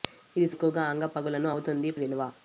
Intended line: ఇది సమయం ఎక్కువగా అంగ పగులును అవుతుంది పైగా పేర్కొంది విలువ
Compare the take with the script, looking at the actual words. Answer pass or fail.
fail